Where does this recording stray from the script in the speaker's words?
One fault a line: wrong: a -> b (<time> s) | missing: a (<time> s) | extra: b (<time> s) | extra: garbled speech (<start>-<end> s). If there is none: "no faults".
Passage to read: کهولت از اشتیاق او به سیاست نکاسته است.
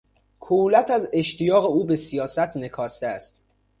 no faults